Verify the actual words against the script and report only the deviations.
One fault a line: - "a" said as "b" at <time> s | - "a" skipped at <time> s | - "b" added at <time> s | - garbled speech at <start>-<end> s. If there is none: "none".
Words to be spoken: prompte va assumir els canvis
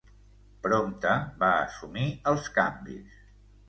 none